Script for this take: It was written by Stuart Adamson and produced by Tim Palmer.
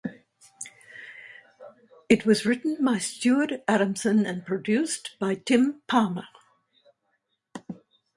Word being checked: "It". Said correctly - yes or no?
yes